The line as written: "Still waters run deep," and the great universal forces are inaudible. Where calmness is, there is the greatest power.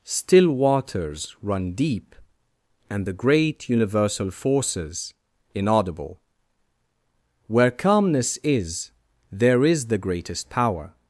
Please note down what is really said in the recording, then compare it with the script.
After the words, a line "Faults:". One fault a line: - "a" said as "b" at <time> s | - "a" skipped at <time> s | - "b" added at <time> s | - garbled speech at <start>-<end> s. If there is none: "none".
"Still waters run deep," and the great universal forces inaudible. Where calmness is, there is the greatest power.
Faults:
- "are" skipped at 5.1 s